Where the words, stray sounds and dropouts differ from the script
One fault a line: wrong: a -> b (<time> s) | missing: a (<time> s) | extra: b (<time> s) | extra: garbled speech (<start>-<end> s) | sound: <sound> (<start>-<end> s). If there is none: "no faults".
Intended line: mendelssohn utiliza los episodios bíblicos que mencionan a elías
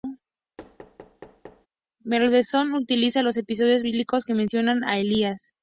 sound: thud (0.6-1.7 s)